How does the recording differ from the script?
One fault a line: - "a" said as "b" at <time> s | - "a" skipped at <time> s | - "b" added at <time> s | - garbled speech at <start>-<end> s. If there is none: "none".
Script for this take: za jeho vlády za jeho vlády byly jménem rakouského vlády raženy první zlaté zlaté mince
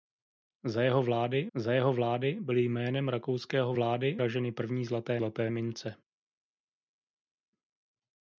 none